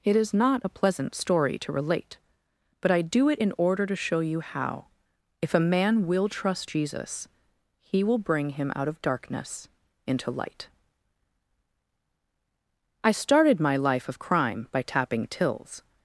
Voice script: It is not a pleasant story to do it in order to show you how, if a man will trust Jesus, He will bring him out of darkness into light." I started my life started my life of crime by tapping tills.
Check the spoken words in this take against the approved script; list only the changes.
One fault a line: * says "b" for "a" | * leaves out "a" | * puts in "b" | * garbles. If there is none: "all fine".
* puts in "relate but I"
* leaves out "started my life"